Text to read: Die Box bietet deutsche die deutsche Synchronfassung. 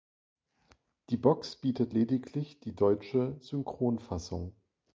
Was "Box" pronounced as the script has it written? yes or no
yes